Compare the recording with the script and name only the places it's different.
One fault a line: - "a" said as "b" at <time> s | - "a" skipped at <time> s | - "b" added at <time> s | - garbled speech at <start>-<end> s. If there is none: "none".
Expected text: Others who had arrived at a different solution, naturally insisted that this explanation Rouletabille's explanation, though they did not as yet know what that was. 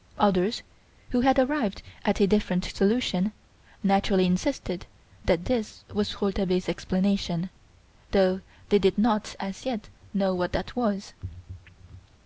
- "explanation" said as "was" at 5.9 s